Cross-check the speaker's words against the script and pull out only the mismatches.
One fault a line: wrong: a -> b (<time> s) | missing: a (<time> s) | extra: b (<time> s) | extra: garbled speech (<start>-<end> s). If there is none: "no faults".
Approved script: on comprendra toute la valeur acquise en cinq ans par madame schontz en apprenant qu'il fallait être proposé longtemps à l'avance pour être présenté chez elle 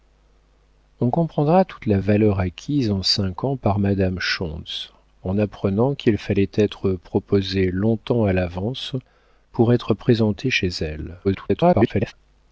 extra: garbled speech (11.2-12.1 s)